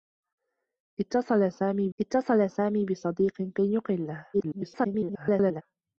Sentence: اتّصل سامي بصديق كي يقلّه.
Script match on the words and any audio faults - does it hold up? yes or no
no